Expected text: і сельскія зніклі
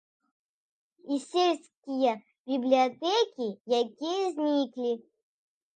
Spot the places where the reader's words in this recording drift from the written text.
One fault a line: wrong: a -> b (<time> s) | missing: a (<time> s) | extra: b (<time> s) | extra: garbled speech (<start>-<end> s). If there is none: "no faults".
extra: бібліятэкі якія (2.5 s)